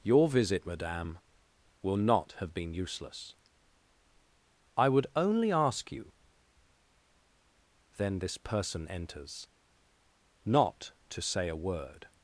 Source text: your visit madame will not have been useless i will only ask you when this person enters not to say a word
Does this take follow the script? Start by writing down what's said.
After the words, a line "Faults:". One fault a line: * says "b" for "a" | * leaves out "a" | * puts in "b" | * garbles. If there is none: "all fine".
your visit madame will not have been useless i would only ask you then this person enters not to say a word
Faults:
* says "would" for "will"
* says "then" for "when"